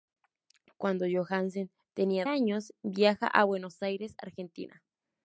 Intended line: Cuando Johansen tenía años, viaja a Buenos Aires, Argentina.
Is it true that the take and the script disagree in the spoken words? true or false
false